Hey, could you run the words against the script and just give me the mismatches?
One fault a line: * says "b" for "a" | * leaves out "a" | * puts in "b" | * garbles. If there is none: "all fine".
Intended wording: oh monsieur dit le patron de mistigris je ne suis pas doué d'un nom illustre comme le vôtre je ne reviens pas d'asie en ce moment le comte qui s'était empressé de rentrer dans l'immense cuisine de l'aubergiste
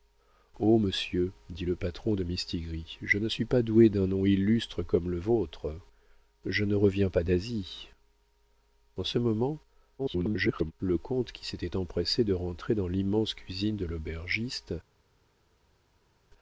* garbles